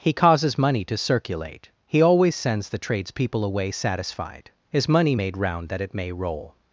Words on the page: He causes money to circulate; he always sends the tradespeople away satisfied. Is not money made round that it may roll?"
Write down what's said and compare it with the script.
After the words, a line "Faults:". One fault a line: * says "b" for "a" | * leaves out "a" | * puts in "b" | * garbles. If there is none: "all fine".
He causes money to circulate; he always sends the tradespeople away satisfied. Is money made round that it may roll?"
Faults:
* leaves out "not"